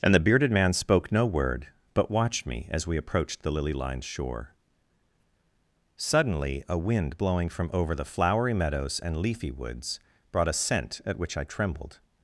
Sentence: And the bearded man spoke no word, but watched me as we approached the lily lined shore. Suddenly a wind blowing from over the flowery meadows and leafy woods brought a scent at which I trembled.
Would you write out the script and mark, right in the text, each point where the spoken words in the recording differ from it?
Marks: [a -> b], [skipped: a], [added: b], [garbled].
And the bearded man spoke no word, but watched me as we approached the lily lined shore. Suddenly a wind blowing from over the flowery meadows and leafy woods brought a scent at which I trembled.